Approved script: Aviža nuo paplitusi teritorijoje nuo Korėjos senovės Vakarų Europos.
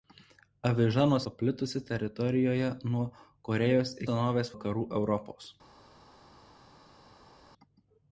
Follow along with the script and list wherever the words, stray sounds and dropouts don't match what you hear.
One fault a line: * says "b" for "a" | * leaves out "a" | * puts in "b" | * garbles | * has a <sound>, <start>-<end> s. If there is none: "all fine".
all fine